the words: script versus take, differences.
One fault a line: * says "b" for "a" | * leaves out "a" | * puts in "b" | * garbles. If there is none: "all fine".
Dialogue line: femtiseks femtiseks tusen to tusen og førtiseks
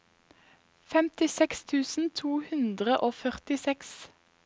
* leaves out "femtiseks"
* says "hundre" for "tusen"